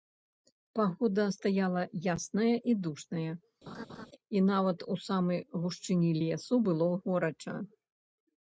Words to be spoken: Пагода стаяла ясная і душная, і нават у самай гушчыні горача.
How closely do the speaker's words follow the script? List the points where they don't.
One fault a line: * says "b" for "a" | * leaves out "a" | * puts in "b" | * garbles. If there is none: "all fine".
* puts in "лесу было"